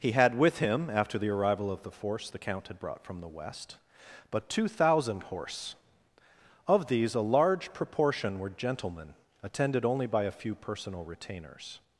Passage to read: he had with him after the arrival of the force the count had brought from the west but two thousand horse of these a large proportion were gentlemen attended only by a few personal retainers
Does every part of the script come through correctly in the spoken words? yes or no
yes